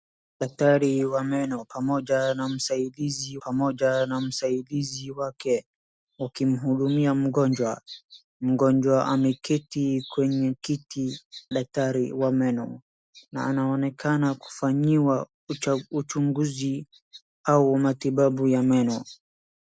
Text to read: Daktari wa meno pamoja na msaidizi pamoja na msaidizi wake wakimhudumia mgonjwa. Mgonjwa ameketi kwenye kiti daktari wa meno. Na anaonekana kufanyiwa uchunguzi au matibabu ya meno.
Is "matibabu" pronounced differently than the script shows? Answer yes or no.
no